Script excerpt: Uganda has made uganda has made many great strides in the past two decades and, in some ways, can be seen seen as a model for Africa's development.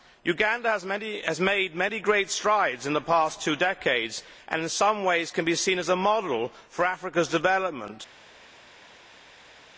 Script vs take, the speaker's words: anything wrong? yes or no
yes